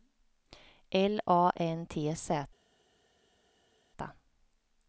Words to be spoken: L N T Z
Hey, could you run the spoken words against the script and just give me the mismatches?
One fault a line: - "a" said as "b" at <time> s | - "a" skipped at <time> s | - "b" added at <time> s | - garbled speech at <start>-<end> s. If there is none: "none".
- "A" added at 1.3 s